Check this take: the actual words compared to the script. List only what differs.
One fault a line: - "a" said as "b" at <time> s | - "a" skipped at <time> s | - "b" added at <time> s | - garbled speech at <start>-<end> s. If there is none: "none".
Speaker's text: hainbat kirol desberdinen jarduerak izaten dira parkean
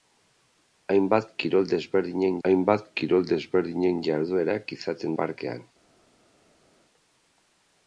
- "hainbat kirol desberdinen" added at 2.5 s
- "dira" skipped at 5.2 s